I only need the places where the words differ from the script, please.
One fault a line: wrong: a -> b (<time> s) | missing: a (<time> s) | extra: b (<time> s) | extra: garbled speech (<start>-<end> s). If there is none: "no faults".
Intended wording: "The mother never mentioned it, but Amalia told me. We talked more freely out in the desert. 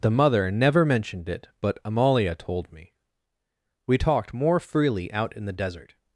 no faults